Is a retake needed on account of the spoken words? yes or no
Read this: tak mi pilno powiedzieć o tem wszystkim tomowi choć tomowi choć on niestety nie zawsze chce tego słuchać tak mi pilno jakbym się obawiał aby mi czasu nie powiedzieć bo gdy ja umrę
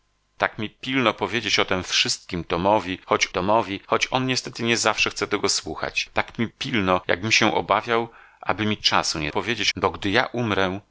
no